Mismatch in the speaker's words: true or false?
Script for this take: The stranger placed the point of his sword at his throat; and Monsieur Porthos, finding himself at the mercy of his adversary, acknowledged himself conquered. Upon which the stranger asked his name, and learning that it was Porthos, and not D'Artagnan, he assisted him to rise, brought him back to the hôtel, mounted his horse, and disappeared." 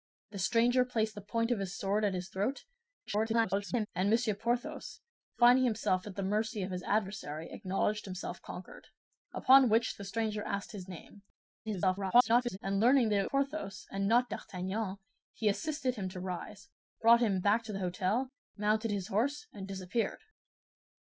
true